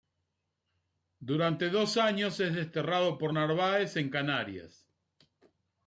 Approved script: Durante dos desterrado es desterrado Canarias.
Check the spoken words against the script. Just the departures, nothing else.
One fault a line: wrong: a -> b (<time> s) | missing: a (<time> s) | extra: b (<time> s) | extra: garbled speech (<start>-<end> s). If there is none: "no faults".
wrong: desterrado -> años (2.0 s)
extra: por Narváez en (3.2 s)